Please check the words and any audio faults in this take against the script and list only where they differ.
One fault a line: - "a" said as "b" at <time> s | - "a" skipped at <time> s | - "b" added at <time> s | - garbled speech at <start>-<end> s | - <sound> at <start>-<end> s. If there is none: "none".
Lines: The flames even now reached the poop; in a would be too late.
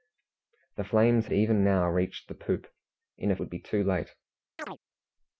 - chirp at 4.6-4.8 s